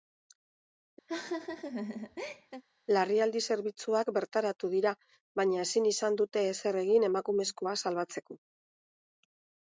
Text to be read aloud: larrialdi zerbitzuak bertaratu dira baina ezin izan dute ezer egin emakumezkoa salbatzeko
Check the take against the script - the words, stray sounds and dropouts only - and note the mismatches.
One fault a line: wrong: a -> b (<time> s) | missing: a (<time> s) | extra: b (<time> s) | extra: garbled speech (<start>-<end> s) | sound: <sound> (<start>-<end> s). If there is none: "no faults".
sound: laugh (1.1-2.6 s)